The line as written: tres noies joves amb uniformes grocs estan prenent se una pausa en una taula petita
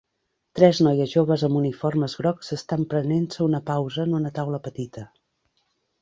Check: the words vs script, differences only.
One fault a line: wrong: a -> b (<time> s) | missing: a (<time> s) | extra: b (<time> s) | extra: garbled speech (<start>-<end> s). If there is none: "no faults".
no faults